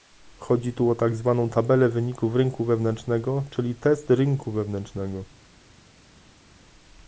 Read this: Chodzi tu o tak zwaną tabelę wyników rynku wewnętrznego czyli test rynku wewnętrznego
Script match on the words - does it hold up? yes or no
yes